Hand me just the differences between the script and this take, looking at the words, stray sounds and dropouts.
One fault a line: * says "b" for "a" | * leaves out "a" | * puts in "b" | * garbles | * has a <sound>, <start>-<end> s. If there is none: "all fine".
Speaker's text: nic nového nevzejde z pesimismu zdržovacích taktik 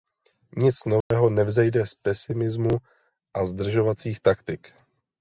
* has a dropout, 1.0-1.1 s
* puts in "a"